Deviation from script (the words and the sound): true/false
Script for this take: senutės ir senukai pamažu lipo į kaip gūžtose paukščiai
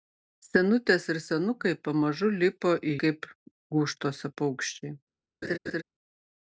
true